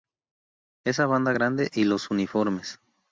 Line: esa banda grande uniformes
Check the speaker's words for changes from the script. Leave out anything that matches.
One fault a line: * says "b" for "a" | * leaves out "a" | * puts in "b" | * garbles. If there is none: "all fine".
* puts in "y los"